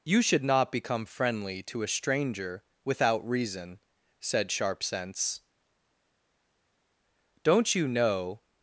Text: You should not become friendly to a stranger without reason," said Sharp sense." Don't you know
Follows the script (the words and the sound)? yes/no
yes